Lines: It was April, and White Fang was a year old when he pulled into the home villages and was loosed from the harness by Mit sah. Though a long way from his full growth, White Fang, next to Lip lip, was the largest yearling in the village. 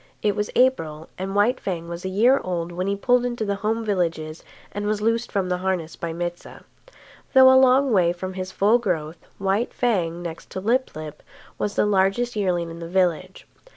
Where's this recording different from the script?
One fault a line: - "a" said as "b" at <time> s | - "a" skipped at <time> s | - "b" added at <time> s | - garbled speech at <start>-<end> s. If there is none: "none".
none